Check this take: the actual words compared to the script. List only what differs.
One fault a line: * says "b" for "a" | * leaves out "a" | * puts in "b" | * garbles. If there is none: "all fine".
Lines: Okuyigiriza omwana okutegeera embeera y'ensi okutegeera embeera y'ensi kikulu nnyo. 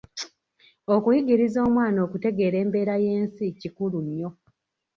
* leaves out "okutegeera embeera y'ensi"